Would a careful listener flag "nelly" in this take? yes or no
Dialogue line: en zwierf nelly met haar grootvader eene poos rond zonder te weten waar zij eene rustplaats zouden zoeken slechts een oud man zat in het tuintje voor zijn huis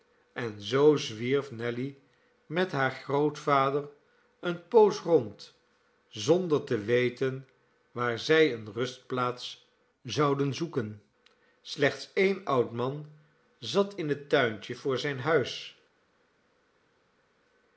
no